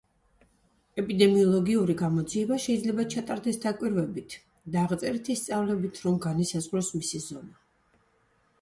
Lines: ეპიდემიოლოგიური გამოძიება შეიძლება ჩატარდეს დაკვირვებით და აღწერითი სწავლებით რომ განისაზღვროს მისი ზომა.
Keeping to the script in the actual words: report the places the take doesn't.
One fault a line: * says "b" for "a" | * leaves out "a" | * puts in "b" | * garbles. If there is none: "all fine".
all fine